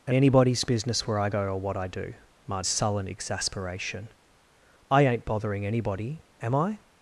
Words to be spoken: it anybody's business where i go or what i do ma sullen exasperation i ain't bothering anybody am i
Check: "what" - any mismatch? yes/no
no